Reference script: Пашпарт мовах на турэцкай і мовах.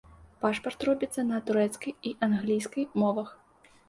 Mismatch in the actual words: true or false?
true